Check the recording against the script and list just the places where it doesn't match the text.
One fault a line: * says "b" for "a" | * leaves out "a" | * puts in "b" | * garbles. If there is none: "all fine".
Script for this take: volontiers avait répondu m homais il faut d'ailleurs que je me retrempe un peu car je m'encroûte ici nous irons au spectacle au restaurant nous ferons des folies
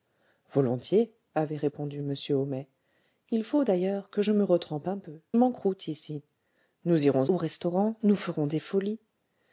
* leaves out "car je"
* leaves out "spectacle"